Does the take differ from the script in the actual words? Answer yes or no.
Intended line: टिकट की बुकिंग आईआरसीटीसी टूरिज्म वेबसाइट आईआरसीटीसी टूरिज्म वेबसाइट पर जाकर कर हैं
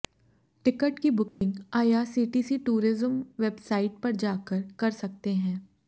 yes